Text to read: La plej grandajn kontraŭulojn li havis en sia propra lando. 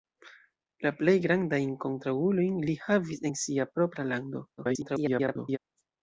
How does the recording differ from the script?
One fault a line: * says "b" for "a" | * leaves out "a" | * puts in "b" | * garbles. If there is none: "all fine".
* garbles